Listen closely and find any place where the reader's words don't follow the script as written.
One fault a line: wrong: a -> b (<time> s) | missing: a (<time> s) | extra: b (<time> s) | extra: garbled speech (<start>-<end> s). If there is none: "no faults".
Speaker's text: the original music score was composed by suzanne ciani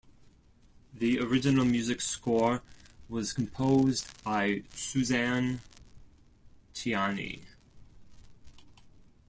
no faults